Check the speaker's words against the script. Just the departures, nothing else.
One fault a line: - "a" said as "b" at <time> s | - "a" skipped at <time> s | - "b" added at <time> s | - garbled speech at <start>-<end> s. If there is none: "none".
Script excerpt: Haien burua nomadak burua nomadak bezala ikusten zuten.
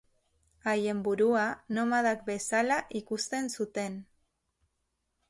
- "burua nomadak" skipped at 2.2 s